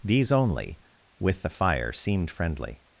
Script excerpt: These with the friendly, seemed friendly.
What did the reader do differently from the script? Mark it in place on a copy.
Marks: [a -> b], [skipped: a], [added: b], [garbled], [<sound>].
These [added: only] with the [friendly, -> fire] seemed friendly.